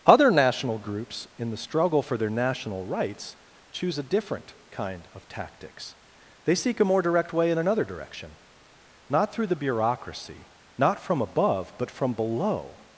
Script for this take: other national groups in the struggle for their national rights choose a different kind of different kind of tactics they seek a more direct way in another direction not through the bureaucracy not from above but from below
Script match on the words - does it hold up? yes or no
no